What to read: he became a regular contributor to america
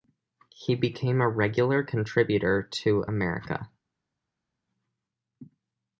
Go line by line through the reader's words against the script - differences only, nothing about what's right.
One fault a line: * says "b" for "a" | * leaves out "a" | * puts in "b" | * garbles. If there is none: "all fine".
all fine